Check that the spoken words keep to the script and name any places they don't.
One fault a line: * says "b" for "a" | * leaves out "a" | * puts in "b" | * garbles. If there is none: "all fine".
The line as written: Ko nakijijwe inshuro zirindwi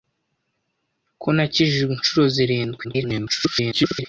* garbles